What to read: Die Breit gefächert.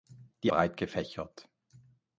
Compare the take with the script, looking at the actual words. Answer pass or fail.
pass